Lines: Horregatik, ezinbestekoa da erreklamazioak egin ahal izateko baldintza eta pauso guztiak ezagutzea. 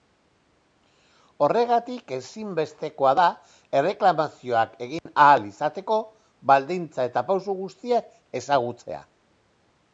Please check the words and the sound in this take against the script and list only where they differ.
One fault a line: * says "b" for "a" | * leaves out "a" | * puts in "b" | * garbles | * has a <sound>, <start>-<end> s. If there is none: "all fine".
* has a dropout, 5.0-5.1 s